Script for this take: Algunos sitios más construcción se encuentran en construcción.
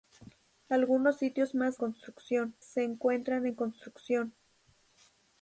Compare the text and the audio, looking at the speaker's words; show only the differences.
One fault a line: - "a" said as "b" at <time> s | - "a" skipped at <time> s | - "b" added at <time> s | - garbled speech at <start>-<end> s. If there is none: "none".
none